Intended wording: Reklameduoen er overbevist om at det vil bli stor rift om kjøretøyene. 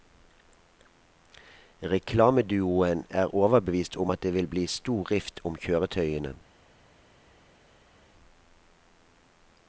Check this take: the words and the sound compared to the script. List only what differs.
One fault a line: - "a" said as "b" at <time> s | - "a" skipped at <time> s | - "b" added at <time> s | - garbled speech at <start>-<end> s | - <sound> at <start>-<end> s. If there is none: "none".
none